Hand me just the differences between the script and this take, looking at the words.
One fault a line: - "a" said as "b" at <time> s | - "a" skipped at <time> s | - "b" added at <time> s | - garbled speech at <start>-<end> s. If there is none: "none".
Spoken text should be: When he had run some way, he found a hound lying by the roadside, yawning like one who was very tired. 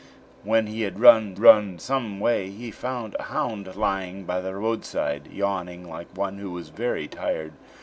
- "run" added at 1.4 s